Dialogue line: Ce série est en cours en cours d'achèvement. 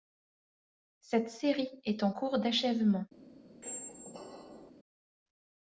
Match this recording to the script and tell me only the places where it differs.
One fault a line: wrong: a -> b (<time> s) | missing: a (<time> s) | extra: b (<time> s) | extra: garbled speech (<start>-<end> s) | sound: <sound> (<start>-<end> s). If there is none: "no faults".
wrong: Ce -> Cette (1.0 s)
missing: en cours (2.4 s)
sound: squeak (3.6-4.7 s)